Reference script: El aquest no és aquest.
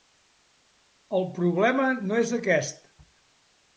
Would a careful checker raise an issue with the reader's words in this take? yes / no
yes